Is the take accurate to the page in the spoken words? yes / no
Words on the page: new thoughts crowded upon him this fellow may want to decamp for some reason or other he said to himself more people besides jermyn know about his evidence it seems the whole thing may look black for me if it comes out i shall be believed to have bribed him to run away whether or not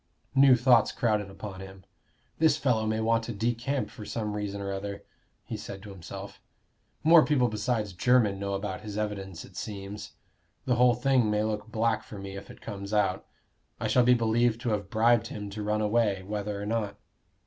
yes